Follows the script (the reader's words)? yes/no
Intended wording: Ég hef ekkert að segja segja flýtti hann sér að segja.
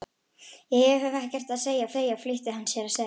yes